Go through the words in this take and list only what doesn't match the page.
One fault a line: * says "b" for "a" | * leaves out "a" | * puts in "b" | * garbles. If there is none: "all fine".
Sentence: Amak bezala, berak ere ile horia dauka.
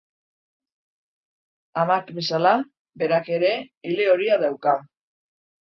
all fine